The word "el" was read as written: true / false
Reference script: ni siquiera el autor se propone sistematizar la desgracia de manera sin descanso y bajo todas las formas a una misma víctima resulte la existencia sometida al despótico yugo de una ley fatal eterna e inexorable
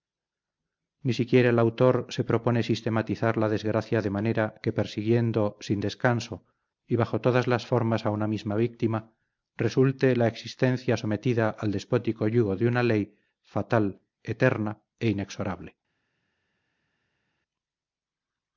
true